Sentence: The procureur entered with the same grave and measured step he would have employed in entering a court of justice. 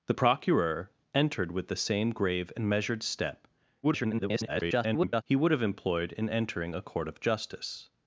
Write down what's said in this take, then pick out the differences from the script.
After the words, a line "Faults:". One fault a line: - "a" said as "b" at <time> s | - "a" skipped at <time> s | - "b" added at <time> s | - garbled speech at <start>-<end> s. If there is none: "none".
The procureur entered with the same grave and measured step [garbled] he would have employed in entering a court of justice.
Faults:
- garbled speech at 3.8-5.2 s